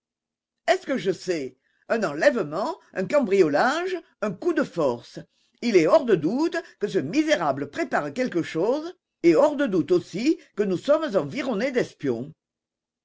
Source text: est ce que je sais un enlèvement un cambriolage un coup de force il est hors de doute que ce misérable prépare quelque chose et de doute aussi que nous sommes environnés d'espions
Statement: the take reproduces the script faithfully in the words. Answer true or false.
false